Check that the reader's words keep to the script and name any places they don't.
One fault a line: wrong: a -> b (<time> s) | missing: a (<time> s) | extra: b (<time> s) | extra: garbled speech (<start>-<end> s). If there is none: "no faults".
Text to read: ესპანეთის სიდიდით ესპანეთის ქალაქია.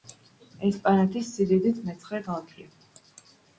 wrong: ესპანეთის -> მეცხრე (1.9 s)